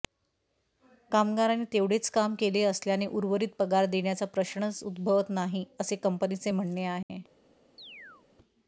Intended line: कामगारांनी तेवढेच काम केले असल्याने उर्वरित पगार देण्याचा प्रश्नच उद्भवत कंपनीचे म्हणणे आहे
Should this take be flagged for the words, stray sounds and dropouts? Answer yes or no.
yes